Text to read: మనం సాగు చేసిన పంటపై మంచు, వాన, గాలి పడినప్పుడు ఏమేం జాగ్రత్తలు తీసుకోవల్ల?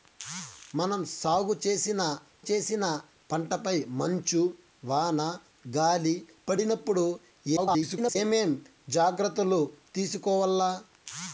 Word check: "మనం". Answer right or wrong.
right